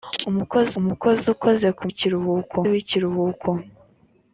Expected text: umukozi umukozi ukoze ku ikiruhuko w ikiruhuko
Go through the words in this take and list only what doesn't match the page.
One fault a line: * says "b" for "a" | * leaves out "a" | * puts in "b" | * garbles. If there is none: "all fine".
all fine